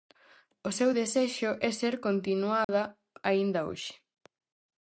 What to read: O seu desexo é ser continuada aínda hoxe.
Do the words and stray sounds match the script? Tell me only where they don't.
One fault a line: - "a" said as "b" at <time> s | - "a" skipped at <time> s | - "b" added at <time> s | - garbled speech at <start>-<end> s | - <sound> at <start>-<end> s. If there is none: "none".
- dropout at 2.6-2.7 s